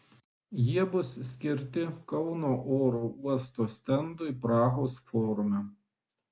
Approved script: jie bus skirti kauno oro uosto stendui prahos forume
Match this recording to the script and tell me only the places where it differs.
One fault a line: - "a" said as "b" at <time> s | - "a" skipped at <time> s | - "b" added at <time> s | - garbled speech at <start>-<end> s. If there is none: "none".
none